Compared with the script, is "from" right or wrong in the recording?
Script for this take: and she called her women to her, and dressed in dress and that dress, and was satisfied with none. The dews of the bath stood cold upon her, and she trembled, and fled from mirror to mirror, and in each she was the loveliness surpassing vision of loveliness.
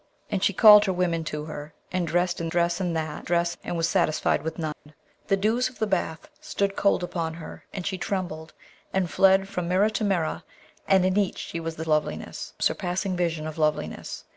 right